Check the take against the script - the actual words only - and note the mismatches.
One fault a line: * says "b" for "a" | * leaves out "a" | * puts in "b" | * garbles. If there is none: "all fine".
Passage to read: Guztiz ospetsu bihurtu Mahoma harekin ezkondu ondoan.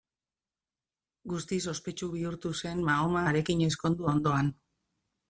* puts in "zen"